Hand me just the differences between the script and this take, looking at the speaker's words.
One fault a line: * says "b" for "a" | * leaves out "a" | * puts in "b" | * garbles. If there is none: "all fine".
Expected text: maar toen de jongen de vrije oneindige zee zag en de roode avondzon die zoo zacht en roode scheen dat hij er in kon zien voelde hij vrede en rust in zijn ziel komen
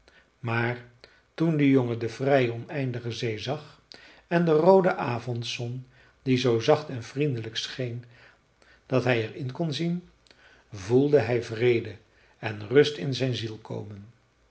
* says "vriendelijk" for "roode"